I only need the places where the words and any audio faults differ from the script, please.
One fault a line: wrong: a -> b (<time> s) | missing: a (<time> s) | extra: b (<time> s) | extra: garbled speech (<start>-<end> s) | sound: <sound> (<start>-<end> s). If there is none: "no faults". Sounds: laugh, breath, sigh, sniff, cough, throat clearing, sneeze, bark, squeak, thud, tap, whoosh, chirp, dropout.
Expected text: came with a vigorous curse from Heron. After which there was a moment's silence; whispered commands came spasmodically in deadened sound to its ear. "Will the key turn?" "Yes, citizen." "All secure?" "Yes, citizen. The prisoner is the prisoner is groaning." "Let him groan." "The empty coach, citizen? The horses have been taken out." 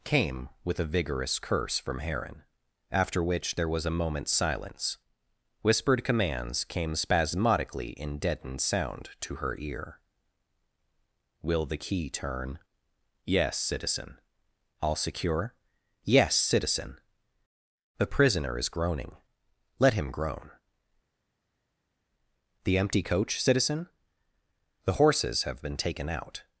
wrong: its -> her (9.4 s)
missing: the prisoner is (18.7 s)